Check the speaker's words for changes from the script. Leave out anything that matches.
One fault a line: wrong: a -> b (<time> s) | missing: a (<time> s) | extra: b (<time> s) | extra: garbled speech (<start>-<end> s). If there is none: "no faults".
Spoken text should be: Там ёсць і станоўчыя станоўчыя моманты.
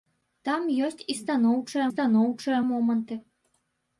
no faults